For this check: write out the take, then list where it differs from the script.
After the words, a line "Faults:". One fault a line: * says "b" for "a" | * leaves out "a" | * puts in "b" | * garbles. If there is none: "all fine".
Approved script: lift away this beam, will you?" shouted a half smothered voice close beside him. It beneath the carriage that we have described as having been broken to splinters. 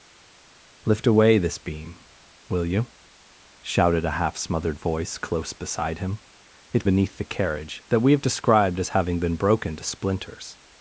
lift away this beam, will you?" shouted a half smothered voice close beside him. It beneath the carriage that we have described as having been broken to splinters.
Faults:
all fine